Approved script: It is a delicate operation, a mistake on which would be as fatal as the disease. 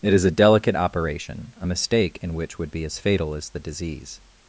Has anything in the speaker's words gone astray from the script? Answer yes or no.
yes